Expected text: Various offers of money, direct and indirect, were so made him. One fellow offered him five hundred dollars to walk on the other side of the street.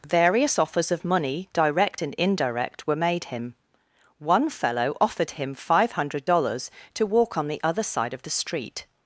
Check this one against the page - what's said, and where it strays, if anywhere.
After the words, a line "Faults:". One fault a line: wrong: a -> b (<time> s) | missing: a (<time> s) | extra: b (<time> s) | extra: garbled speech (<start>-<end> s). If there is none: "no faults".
Various offers of money, direct and indirect, were made him. One fellow offered him five hundred dollars to walk on the other side of the street.
Faults:
missing: so (3.0 s)